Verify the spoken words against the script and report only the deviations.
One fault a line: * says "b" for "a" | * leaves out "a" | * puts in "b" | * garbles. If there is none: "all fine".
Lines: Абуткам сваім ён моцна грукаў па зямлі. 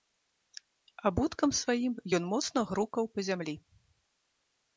all fine